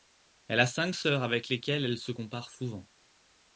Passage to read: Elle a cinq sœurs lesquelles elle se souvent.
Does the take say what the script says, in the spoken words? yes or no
no